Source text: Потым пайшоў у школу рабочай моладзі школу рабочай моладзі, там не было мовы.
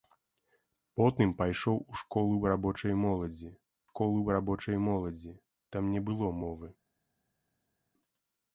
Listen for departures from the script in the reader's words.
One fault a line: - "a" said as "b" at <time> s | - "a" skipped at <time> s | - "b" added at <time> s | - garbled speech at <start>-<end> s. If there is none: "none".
none